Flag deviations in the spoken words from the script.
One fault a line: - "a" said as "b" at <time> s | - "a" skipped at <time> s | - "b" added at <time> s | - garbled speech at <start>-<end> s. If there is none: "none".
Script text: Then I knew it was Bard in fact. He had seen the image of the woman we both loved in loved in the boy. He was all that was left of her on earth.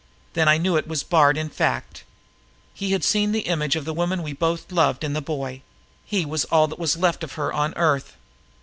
- "loved in" skipped at 5.1 s